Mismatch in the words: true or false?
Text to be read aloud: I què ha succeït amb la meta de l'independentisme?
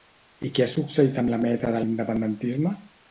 false